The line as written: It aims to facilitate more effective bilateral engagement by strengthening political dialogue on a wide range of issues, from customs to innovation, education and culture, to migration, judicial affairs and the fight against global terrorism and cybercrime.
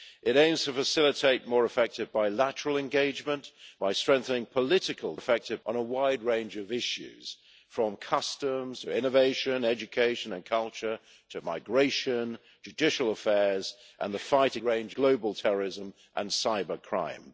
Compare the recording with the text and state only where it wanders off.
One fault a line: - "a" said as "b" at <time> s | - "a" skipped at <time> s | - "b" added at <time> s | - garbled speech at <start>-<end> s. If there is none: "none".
- "dialogue" said as "effective" at 5.1 s
- "against" said as "range" at 14.6 s